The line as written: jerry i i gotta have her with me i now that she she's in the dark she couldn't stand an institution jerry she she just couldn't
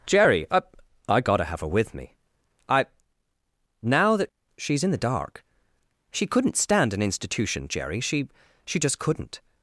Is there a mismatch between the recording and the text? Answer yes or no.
yes